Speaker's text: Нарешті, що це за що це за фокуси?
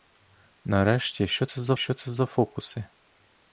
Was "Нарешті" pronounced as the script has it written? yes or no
yes